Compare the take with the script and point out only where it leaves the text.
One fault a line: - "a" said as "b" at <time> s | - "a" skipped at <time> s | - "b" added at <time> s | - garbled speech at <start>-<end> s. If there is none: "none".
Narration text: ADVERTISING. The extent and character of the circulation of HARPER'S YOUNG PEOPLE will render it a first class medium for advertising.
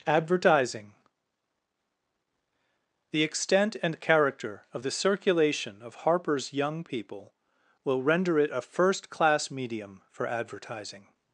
none